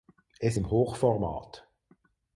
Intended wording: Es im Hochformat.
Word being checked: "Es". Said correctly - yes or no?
yes